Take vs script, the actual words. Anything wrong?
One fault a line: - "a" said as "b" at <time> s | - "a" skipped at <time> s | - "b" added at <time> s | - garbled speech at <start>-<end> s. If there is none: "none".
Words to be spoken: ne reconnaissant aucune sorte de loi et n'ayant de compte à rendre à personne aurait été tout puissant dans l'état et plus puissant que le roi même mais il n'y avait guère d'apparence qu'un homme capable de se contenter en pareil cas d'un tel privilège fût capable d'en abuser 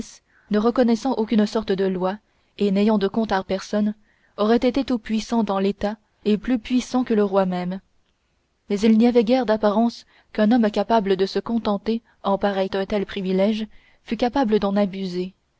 - "rendre" skipped at 3.4 s
- "cas" skipped at 12.7 s